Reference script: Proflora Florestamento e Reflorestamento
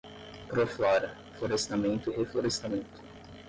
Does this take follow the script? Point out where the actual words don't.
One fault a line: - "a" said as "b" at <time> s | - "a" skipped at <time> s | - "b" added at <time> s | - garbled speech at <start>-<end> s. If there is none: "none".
none